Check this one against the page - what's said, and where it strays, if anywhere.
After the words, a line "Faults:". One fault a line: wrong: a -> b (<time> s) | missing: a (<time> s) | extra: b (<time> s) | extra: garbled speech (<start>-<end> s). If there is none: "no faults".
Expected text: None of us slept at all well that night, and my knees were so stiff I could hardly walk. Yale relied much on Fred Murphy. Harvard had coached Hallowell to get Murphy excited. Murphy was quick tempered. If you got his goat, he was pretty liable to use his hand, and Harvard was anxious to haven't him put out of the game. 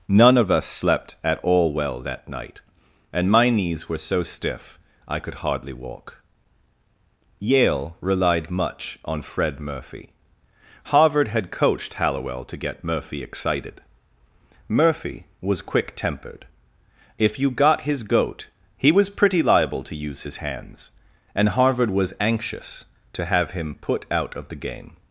None of us slept at all well that night, and my knees were so stiff I could hardly walk. Yale relied much on Fred Murphy. Harvard had coached Hallowell to get Murphy excited. Murphy was quick tempered. If you got his goat, he was pretty liable to use his hands, and Harvard was anxious to have him put out of the game.
Faults:
wrong: hand -> hands (20.4 s)
wrong: haven't -> have (23.2 s)